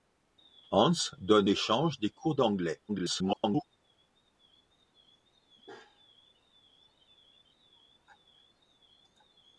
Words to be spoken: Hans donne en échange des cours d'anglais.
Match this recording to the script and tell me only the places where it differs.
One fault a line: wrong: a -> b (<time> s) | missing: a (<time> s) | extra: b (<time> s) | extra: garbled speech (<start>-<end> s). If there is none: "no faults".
missing: en (1.5 s)
extra: garbled speech (2.9-3.6 s)